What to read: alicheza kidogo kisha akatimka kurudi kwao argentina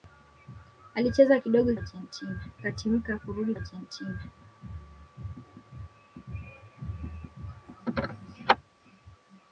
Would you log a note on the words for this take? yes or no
yes